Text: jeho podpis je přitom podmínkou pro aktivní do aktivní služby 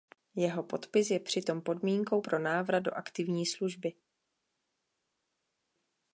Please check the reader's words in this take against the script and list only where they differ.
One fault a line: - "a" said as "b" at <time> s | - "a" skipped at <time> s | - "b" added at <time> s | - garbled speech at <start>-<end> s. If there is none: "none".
- "aktivní" said as "návrat" at 2.4 s